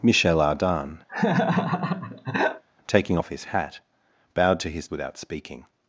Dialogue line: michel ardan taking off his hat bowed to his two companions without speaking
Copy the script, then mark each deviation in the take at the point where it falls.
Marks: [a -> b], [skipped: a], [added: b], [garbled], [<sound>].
michel ardan [laugh] taking off his hat bowed to his [skipped: two companions] without speaking